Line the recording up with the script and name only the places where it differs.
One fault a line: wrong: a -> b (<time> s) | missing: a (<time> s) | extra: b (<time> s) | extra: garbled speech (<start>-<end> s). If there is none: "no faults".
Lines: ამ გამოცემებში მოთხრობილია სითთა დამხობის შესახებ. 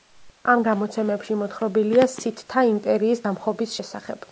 extra: იმპერიის (2.7 s)